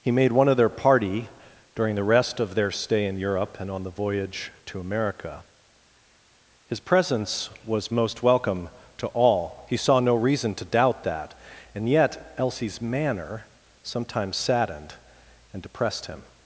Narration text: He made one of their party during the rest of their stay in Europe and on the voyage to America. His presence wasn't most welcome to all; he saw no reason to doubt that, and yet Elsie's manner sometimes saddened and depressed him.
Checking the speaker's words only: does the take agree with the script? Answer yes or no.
no